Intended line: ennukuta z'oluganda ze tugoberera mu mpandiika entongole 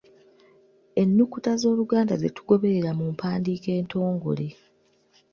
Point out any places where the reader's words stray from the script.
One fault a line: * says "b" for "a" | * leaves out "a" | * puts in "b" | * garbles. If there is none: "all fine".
all fine